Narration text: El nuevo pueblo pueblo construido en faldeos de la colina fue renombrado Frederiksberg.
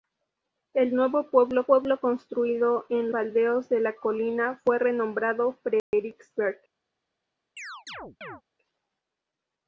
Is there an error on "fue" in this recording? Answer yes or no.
no